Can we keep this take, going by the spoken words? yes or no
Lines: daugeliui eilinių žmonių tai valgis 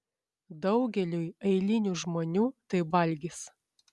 yes